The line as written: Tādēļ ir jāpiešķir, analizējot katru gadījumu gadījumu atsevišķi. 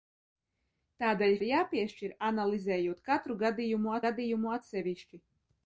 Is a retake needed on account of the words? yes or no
no